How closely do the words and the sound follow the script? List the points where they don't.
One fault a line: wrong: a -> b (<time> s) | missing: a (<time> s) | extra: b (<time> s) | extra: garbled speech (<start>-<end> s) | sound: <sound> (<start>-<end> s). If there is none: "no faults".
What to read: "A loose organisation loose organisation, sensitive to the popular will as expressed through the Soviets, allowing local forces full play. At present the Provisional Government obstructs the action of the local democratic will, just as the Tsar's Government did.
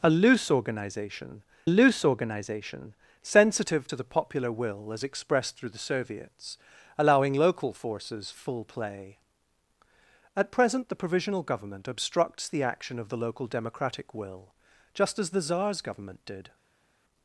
no faults